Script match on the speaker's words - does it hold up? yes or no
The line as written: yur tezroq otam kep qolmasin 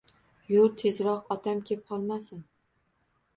yes